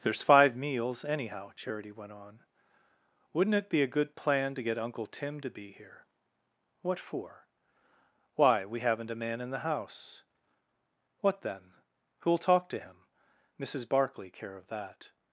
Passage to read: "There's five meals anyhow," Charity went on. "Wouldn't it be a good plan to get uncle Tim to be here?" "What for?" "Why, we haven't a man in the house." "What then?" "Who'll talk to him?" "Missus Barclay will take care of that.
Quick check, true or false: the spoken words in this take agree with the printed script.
false